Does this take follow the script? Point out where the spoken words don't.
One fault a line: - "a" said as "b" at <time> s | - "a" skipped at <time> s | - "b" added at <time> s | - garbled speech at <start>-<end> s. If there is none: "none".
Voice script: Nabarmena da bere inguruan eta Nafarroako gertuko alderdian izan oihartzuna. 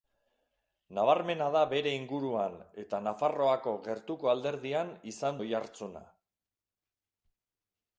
none